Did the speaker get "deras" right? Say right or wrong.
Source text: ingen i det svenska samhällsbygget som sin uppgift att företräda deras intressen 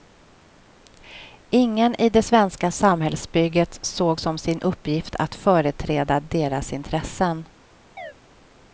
right